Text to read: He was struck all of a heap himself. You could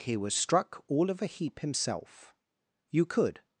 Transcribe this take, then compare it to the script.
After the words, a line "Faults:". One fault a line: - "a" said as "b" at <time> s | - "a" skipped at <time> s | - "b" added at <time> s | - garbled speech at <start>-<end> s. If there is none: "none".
He was struck all of a heap himself. You could
Faults:
none